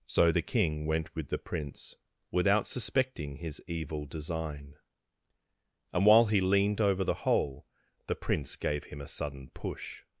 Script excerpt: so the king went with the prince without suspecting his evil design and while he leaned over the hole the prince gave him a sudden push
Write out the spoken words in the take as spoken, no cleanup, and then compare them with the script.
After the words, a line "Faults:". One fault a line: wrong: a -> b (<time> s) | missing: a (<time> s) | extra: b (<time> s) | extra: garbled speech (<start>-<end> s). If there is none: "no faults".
so the king went with the prince without suspecting his evil design and while he leaned over the hole the prince gave him a sudden push
Faults:
no faults